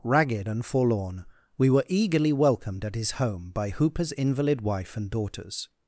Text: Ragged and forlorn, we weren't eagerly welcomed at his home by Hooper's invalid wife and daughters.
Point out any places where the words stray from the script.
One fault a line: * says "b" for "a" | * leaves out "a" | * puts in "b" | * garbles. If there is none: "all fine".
* says "were" for "weren't"